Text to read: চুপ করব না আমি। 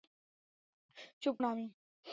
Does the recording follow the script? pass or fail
fail